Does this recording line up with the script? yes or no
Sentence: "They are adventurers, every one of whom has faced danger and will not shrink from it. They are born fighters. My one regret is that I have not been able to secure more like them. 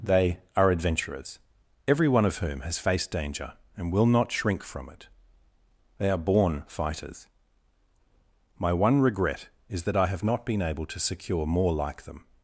yes